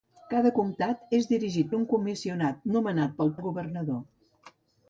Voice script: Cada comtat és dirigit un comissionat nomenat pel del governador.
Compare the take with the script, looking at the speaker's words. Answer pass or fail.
pass